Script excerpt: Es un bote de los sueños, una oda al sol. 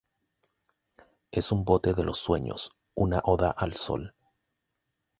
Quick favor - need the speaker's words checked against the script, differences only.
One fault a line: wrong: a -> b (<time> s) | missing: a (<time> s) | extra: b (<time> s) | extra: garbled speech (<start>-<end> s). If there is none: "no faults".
no faults